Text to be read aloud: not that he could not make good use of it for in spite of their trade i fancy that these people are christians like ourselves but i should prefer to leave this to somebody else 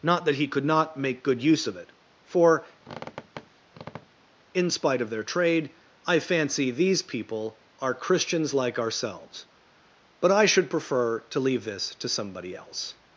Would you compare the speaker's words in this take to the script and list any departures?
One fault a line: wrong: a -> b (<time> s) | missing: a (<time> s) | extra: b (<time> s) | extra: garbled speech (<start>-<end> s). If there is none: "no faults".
missing: that (6.7 s)